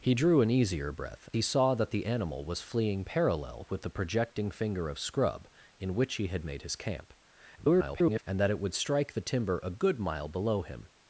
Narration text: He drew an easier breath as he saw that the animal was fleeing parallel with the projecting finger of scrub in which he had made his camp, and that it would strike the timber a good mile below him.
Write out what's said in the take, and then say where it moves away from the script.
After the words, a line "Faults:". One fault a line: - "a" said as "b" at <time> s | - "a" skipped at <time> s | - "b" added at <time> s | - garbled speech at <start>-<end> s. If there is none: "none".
He drew an easier breath he saw that the animal was fleeing parallel with the projecting finger of scrub in which he had made his camp, [garbled] and that it would strike the timber a good mile below him.
Faults:
- "as" skipped at 1.3 s
- garbled speech at 7.6-8.2 s